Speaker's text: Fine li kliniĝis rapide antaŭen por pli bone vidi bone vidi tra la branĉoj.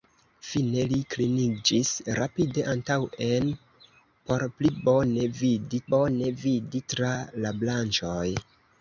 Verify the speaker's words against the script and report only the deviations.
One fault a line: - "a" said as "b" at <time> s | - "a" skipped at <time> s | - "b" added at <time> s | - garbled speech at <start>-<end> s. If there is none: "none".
none